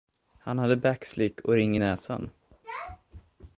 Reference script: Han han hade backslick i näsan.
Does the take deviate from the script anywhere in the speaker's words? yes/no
yes